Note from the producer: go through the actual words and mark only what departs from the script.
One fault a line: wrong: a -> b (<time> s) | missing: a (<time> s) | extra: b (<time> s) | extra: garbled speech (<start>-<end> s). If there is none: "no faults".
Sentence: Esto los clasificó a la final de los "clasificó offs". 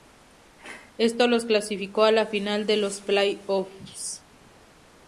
wrong: clasificó -> play (3.0 s)